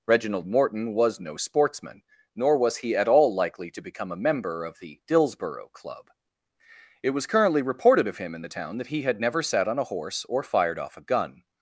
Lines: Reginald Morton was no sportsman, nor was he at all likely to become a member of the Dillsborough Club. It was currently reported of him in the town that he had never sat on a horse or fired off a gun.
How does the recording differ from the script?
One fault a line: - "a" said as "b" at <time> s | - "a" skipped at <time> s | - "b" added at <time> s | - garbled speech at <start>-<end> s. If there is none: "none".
none